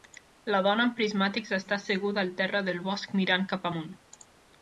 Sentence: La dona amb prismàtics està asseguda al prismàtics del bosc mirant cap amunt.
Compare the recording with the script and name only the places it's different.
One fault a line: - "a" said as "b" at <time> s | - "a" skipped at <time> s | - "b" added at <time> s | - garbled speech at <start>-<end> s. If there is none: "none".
- "prismàtics" said as "terra" at 2.4 s